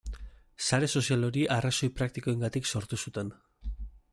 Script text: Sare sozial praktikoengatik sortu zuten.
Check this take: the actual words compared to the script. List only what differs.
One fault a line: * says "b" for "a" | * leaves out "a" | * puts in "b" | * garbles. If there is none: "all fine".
* puts in "hori arrazoi"